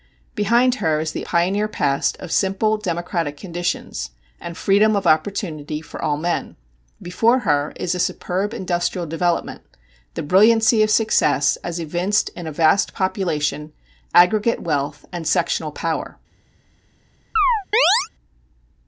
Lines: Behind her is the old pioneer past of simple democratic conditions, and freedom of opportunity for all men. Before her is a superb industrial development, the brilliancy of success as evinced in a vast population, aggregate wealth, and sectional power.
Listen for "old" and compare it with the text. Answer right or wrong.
wrong